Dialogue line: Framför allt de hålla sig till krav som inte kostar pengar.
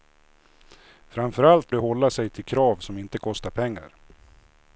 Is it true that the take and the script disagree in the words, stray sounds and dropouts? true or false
false